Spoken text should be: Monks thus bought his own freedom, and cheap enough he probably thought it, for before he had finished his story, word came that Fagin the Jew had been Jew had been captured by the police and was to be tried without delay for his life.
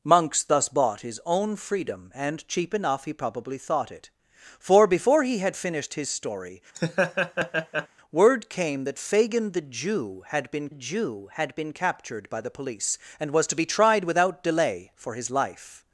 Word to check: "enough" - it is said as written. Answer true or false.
true